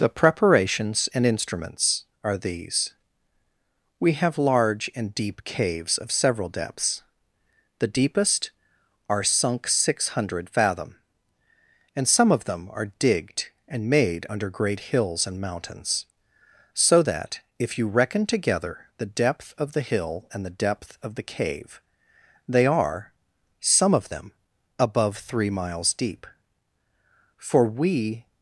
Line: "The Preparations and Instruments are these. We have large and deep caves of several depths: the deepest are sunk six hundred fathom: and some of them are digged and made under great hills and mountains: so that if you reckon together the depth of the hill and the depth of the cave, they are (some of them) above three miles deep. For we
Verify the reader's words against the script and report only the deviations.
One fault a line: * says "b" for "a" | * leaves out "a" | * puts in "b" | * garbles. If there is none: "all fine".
all fine